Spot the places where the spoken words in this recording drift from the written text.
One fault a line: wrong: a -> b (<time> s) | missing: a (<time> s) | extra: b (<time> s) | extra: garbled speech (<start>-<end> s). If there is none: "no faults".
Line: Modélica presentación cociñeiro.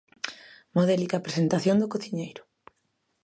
extra: do (1.8 s)